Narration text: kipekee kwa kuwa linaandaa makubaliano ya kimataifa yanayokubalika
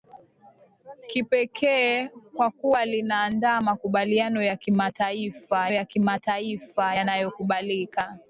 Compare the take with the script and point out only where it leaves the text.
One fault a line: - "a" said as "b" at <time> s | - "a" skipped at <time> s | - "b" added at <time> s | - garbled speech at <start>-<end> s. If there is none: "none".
- "ya kimataifa" added at 5.7 s